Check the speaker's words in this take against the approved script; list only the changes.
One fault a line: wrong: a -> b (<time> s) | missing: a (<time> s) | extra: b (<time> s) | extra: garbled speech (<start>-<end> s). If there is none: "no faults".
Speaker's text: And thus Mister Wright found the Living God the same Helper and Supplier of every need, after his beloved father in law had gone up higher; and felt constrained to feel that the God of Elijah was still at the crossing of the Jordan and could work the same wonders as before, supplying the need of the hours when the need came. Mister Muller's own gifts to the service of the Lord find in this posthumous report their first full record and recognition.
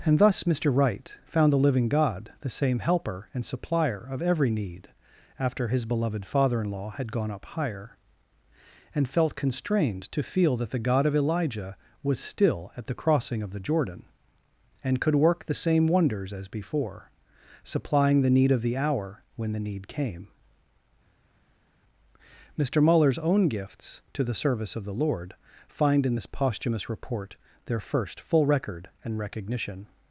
wrong: hours -> hour (18.8 s)